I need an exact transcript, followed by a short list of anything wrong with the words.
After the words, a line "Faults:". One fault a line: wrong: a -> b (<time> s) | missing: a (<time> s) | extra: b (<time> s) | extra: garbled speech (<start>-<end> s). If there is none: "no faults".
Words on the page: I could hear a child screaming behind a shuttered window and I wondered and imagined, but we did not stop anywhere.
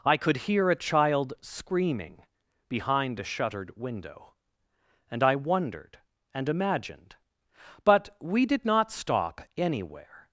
I could hear a child screaming behind a shuttered window and I wondered and imagined, but we did not stop anywhere.
Faults:
no faults